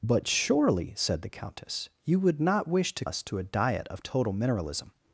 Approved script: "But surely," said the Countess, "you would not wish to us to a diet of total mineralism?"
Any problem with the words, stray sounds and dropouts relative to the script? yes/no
no